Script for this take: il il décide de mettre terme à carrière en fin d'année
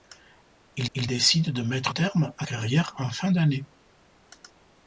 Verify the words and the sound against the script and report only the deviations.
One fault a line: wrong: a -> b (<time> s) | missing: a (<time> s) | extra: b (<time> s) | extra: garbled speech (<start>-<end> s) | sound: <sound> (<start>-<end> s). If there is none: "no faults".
no faults